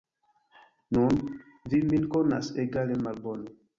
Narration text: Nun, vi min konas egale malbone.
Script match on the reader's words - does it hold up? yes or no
yes